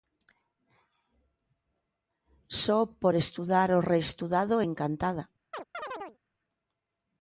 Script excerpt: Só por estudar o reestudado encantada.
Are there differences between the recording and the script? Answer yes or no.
no